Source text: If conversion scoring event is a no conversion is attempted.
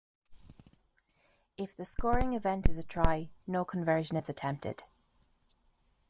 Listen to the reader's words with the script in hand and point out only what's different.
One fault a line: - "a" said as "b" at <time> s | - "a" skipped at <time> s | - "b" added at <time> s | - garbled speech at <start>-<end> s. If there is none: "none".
- "conversion" said as "the" at 1.8 s
- "try" added at 2.8 s